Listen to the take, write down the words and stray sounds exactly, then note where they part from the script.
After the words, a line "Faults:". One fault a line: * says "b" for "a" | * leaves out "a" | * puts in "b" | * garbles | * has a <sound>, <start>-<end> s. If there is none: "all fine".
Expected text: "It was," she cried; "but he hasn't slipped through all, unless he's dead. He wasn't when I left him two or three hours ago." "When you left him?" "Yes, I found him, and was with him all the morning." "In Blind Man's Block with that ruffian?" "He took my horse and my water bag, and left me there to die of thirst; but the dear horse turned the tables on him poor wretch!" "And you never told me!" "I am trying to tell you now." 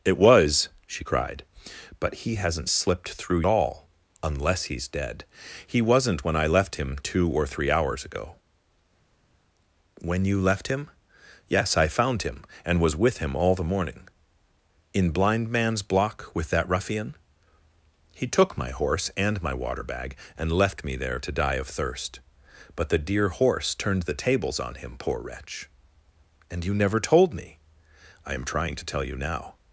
"It was," she cried; "but he hasn't slipped through all, unless he's dead. He wasn't when I left him two or three hours ago." "When you left him?" "Yes, I found him, and was with him all the morning." "In Blind Man's Block with that ruffian?" "He took my horse and my water bag, and left me there to die of thirst; but the dear horse turned the tables on him poor wretch!" "And you never told me!" "I am trying to tell you now."
Faults:
all fine